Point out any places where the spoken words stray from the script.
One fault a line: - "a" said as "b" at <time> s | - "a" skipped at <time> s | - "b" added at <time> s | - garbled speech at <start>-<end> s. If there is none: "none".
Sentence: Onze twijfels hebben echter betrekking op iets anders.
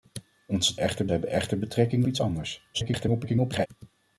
- "twijfels" said as "echter" at 0.8 s
- "op" skipped at 2.0 s
- garbled speech at 2.7-3.7 s